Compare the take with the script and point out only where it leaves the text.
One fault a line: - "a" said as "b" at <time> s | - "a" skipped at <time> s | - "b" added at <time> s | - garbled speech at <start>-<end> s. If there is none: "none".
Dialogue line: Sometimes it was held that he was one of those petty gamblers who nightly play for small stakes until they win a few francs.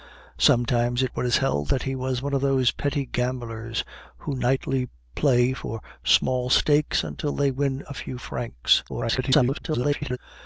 - garbled speech at 8.9-10.2 s